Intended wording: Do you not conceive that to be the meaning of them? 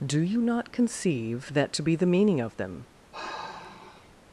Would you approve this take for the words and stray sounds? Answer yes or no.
no